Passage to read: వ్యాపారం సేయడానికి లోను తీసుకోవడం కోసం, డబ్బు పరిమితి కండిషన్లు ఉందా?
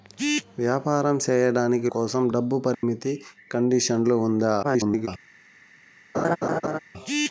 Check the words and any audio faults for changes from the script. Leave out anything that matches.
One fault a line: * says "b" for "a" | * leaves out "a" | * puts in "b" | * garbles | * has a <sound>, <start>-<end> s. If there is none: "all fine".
* leaves out "లోను తీసుకోవడం"
* has a dropout, 2.7-2.8 s
* garbles
* has a laugh, 6.1-6.8 s